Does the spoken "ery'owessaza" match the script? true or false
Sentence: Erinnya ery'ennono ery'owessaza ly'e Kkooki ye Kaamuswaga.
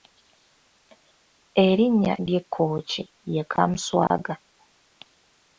false